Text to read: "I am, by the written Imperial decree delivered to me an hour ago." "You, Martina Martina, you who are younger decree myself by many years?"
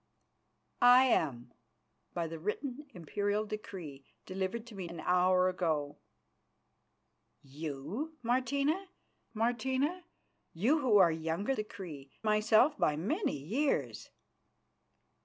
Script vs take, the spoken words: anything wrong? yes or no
no